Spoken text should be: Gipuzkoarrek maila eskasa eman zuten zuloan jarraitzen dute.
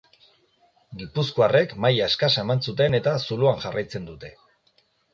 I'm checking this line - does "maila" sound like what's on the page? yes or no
yes